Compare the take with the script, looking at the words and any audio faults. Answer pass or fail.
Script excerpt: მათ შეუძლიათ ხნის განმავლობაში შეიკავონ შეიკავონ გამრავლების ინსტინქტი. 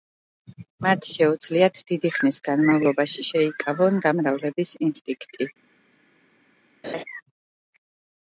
fail